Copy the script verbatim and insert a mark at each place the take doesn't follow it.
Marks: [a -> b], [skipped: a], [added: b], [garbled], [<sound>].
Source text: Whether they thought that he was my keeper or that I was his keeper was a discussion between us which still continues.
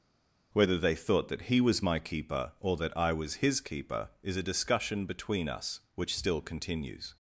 Whether they thought that he was my keeper or that I was his keeper [was -> is] a discussion between us which still continues.